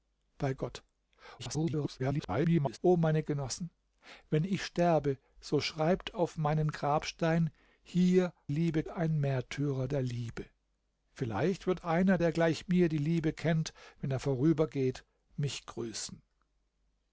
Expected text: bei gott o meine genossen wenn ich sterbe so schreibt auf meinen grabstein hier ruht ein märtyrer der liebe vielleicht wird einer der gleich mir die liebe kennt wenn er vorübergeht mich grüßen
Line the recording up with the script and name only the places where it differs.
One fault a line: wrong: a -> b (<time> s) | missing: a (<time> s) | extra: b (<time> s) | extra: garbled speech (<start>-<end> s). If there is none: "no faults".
extra: garbled speech (1.4-2.8 s)
wrong: ruht -> liebe (8.5 s)